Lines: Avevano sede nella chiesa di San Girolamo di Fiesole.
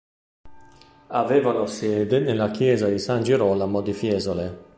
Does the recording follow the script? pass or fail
pass